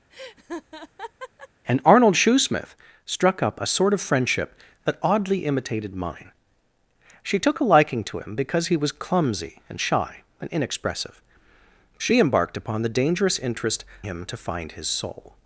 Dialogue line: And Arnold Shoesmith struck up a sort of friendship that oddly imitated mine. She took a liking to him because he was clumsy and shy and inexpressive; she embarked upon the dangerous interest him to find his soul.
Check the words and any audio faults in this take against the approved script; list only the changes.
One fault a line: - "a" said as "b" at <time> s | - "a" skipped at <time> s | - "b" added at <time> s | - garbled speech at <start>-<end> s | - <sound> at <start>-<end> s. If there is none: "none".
- laugh at 0.1-1.5 s